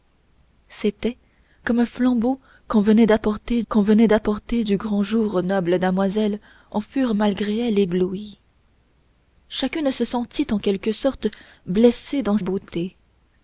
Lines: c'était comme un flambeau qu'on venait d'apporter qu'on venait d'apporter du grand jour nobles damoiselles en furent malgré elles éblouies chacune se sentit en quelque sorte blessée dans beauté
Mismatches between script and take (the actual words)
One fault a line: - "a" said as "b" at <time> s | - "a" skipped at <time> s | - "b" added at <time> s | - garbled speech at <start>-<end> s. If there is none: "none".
none